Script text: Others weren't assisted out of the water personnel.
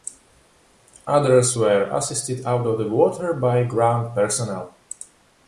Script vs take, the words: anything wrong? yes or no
yes